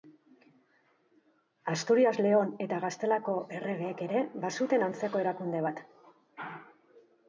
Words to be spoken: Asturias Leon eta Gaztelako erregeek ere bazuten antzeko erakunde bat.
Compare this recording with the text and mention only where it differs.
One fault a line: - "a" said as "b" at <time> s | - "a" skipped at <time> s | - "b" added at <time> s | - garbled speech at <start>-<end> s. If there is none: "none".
none